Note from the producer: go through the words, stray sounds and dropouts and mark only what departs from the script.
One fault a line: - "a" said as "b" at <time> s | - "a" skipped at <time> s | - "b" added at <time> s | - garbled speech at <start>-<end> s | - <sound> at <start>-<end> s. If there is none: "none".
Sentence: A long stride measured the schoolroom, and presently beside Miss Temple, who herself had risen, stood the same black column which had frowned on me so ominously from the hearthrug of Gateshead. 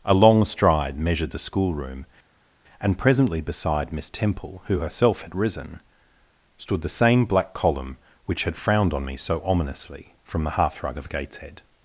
none